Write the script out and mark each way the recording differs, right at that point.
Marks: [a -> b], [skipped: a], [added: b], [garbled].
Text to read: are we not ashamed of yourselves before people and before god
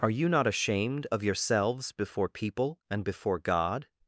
are [we -> you] not ashamed of yourselves before people and before god